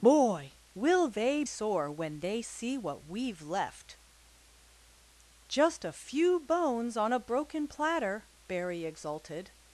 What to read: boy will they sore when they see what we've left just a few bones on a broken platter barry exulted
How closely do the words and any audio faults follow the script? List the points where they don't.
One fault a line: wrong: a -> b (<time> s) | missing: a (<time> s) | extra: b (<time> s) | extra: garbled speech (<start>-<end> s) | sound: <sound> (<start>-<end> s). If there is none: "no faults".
no faults